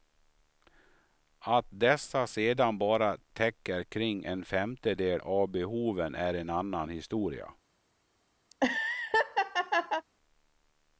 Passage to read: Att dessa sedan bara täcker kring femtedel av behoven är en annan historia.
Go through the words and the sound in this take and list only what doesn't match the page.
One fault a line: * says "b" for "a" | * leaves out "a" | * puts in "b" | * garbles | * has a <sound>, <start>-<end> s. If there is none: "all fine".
* puts in "en"
* has a laugh, 8.5-10.0 s